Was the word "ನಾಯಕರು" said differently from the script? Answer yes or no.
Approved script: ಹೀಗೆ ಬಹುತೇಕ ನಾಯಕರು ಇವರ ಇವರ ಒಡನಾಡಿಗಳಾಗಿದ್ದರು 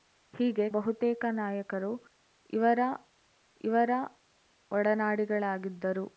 no